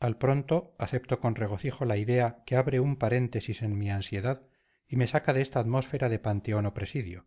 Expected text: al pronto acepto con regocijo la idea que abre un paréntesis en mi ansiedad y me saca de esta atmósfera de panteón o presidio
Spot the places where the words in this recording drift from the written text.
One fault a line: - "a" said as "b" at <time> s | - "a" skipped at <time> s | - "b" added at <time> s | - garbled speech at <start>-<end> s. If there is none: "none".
none